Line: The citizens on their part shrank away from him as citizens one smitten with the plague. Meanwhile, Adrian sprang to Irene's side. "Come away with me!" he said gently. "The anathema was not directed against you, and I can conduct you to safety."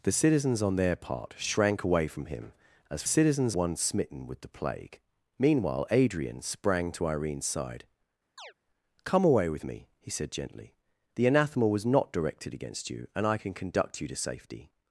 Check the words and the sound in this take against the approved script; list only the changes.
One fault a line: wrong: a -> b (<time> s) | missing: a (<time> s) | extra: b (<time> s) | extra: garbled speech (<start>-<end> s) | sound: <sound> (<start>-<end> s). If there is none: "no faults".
sound: chirp (8.4-8.5 s)